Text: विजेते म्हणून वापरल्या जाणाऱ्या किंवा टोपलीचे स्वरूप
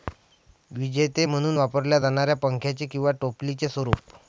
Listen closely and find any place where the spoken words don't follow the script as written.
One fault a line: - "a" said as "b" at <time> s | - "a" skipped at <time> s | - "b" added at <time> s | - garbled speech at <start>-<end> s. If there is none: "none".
- "पंख्याचे" added at 2.4 s